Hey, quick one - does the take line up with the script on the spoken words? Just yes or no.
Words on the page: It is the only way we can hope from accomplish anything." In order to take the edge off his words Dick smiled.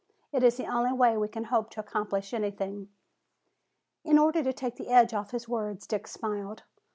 no